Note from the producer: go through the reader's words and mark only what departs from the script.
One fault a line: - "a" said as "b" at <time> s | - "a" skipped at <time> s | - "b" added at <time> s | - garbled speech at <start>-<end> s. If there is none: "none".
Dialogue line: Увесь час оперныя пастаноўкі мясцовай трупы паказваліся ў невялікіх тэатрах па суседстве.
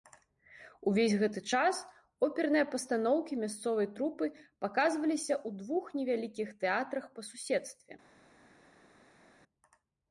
- "гэты" added at 1.2 s
- "двух" added at 5.6 s